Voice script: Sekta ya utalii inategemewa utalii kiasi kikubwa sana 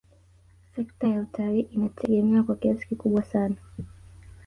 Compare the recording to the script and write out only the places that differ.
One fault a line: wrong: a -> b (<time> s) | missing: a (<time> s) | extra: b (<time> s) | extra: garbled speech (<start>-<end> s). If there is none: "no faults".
wrong: utalii -> kwa (2.4 s)